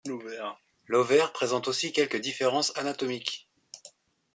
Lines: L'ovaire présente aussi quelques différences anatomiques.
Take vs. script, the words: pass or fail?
pass